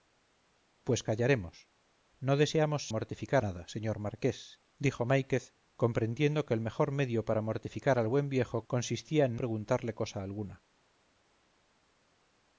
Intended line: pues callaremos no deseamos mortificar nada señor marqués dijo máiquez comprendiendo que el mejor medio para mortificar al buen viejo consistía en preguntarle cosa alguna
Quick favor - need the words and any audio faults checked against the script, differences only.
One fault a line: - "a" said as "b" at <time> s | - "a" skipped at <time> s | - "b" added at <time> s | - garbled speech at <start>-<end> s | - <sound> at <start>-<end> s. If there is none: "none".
none